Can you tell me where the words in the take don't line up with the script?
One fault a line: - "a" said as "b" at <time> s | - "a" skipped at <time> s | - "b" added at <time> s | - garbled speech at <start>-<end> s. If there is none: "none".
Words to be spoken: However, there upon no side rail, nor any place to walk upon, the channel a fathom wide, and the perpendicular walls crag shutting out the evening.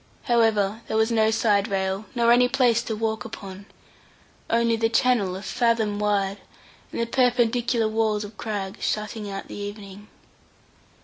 - "upon" said as "was" at 1.0 s
- "only" added at 4.5 s
- "of" added at 8.2 s